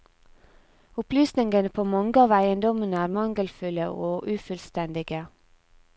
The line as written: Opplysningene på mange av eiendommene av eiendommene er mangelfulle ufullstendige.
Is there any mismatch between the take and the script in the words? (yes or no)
yes